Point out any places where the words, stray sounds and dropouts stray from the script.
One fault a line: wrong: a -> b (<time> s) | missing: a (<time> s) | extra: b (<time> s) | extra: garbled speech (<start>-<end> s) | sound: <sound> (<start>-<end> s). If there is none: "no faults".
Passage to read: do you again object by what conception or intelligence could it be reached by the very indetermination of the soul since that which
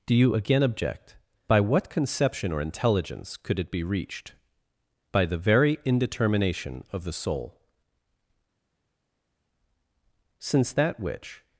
no faults